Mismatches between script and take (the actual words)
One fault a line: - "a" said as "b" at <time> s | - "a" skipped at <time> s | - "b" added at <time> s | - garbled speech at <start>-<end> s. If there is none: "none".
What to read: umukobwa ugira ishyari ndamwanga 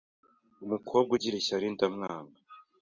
none